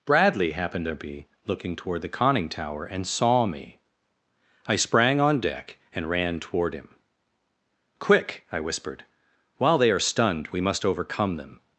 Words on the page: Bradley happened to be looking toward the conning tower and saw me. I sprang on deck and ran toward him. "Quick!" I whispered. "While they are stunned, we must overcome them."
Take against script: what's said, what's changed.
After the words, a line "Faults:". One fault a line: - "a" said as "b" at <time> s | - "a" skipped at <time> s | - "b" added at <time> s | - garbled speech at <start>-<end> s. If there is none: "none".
Bradley happened to be looking toward the conning tower and saw me. I sprang on deck and ran toward him. "Quick!" I whispered. "While they are stunned, we must overcome them."
Faults:
none